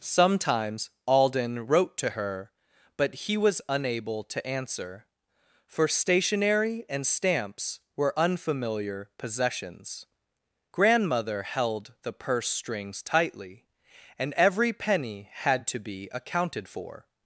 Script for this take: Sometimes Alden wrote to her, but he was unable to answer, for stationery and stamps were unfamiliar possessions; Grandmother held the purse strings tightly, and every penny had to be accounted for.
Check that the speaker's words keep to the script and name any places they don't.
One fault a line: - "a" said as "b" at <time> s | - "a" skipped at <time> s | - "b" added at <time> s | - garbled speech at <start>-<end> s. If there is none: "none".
none